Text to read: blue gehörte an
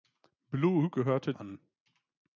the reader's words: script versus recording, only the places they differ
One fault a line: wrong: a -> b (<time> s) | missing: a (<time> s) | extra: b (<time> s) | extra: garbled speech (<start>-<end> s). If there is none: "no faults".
no faults